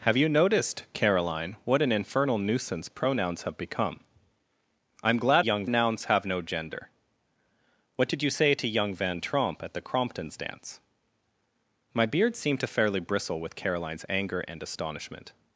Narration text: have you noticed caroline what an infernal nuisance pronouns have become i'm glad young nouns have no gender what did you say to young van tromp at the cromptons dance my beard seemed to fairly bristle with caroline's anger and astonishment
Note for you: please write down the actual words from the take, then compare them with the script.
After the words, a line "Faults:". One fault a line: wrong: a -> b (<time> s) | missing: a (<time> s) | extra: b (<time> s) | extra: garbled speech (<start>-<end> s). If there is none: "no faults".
have you noticed caroline what an infernal nuisance pronouns have become i'm glad young nouns have no gender what did you say to young van tromp at the cromptons dance my beard seemed to fairly bristle with caroline's anger and astonishment
Faults:
no faults